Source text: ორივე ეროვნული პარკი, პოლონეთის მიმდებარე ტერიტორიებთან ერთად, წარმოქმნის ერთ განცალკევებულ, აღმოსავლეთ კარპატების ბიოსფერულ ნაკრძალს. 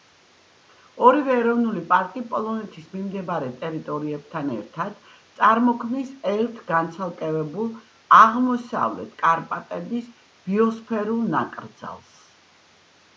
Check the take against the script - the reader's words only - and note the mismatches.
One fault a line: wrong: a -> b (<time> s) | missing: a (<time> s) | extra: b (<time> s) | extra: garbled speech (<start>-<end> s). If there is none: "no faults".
no faults